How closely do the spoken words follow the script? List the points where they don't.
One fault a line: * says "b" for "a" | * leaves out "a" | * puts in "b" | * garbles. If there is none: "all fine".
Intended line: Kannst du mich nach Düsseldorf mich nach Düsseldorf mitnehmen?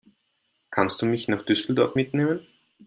* leaves out "mich nach Düsseldorf"